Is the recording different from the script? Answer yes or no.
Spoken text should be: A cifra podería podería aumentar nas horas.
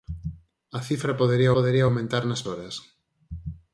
no